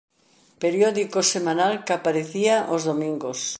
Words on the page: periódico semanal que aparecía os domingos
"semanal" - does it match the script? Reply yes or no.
yes